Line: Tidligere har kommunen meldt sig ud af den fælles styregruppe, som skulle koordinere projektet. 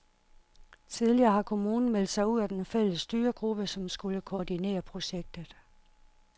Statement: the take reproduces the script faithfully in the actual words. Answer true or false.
true